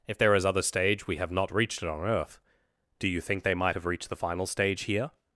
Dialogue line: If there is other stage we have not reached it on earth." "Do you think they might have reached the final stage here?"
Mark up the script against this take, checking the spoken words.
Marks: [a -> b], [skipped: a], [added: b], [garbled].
If there is other stage we have not reached it on earth." "Do you think they might have reached the final stage here?"